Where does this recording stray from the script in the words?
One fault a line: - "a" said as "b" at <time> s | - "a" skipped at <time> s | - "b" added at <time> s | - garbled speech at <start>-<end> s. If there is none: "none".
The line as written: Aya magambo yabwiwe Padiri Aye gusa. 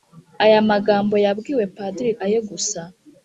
none